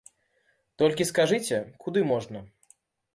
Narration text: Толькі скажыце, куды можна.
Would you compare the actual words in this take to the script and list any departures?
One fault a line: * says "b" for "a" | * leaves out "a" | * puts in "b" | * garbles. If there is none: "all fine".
all fine